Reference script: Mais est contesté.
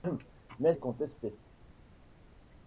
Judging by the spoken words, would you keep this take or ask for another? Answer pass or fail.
pass